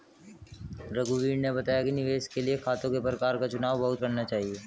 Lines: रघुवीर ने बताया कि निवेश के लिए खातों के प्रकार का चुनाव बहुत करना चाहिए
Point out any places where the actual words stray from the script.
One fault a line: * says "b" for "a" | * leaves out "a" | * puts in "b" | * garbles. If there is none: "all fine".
all fine